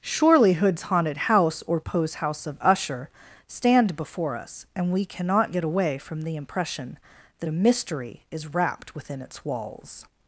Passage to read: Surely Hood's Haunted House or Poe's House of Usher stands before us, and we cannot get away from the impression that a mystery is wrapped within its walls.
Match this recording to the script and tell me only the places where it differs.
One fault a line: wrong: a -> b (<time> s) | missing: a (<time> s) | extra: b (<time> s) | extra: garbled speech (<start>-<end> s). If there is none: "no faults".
wrong: stands -> stand (3.5 s)